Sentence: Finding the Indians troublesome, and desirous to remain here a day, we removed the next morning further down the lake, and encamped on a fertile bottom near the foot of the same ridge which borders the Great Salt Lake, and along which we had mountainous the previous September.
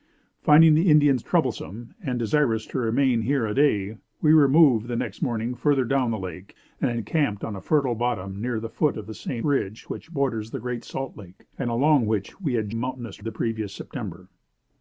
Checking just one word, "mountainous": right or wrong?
right